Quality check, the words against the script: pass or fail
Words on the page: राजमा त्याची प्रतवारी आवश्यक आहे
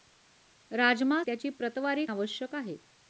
pass